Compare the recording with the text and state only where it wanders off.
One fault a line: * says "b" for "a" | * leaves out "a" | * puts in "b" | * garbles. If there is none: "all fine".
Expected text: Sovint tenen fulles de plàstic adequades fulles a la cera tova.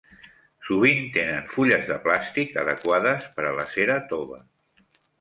* says "per" for "fulles"